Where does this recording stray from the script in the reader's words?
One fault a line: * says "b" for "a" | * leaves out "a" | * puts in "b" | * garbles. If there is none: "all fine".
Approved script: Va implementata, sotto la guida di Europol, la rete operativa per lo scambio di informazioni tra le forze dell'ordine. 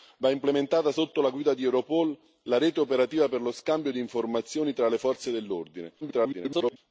* garbles